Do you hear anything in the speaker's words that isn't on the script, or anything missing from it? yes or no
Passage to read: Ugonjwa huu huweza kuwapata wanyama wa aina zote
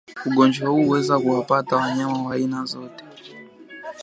no